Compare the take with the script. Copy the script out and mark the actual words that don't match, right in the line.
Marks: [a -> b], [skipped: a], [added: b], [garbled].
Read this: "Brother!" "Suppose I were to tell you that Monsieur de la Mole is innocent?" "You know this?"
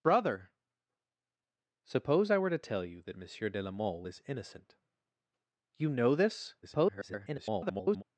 "Brother!" "Suppose I were to tell you that Monsieur de la Mole is innocent?" "You know this?" [garbled]